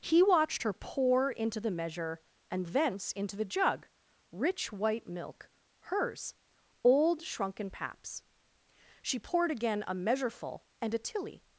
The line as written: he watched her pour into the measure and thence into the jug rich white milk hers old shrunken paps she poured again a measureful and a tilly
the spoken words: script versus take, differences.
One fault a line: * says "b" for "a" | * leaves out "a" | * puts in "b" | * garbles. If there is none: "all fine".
all fine